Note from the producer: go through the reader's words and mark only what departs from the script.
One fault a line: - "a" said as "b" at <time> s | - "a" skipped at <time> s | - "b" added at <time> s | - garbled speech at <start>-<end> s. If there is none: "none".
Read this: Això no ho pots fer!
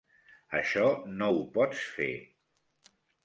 none